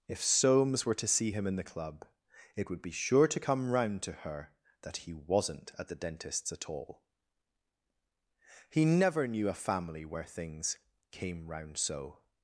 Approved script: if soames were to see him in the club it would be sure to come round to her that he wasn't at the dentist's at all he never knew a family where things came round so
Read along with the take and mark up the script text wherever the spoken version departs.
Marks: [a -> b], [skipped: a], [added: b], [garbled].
if soames were to see him in the club it would be sure to come round to her that he wasn't at the dentist's at all he never knew a family where things came round so